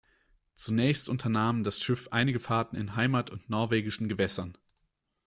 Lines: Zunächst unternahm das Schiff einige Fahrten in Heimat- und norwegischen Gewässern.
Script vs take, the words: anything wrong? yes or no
no